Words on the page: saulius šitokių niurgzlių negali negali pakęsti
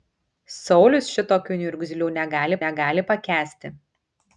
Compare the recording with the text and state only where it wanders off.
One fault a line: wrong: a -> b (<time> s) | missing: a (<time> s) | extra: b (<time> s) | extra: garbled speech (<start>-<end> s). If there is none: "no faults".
no faults